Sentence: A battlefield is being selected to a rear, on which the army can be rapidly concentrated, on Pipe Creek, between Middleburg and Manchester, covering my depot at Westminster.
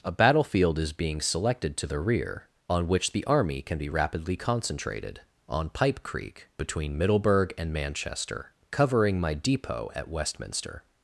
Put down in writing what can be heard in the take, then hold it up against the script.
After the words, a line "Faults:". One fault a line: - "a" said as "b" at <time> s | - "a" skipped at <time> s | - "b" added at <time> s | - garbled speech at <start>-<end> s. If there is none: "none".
A battlefield is being selected to the rear, on which the army can be rapidly concentrated, on Pipe Creek, between Middleburg and Manchester, covering my depot at Westminster.
Faults:
- "a" said as "the" at 1.9 s